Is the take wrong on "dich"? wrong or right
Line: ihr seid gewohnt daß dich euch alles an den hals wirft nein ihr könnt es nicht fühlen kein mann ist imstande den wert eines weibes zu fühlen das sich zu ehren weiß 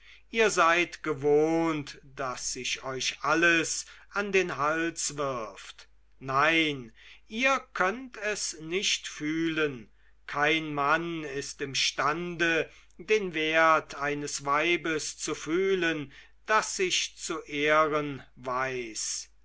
wrong